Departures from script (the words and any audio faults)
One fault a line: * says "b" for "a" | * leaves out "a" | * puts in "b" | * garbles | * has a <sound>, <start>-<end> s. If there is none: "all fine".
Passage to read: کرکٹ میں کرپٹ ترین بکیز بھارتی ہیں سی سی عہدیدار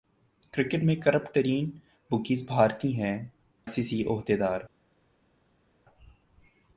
all fine